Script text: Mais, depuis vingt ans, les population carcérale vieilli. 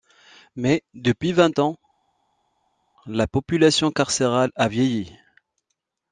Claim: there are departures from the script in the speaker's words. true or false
true